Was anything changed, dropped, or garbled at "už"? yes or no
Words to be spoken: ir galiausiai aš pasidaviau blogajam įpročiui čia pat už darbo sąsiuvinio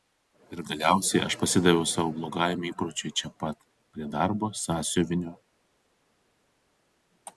yes